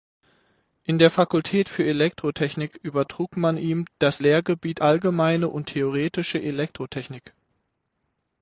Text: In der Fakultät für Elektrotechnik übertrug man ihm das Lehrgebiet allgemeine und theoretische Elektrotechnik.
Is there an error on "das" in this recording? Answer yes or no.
no